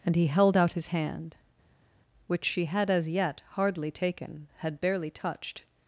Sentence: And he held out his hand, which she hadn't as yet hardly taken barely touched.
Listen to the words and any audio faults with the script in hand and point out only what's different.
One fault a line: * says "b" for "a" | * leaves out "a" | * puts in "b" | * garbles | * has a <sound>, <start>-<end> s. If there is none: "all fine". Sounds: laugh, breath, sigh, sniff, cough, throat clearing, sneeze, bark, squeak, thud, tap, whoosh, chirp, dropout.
* says "had" for "hadn't"
* puts in "had"